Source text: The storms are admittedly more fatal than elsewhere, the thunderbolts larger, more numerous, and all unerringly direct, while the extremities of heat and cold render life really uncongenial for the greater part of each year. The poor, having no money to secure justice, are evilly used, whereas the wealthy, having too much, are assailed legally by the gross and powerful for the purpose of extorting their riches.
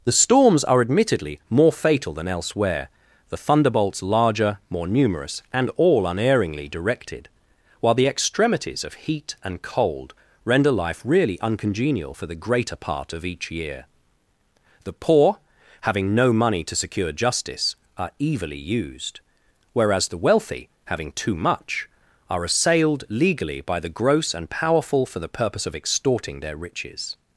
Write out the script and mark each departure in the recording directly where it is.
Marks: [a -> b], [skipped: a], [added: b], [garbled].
The storms are admittedly more fatal than elsewhere, the thunderbolts larger, more numerous, and all unerringly [direct, -> directed] while the extremities of heat and cold render life really uncongenial for the greater part of each year. The poor, having no money to secure justice, are evilly used, whereas the wealthy, having too much, are assailed legally by the gross and powerful for the purpose of extorting their riches.